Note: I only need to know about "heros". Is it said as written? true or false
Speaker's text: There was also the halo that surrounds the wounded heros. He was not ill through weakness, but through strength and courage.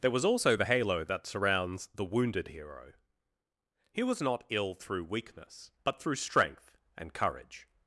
false